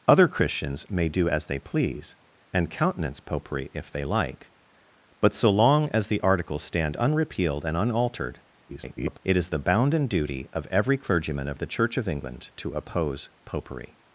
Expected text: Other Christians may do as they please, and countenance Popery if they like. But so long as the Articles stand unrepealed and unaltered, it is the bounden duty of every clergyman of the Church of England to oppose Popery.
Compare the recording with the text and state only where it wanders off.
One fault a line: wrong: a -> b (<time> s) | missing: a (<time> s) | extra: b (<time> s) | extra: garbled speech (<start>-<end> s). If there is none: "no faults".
extra: garbled speech (8.7-9.2 s)